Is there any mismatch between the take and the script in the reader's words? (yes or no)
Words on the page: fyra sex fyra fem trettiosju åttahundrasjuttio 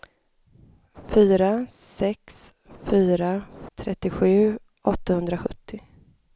yes